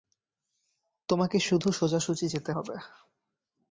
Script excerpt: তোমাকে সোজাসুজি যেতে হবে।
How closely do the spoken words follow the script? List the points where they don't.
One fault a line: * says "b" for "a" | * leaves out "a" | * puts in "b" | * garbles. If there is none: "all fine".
* puts in "শুধু"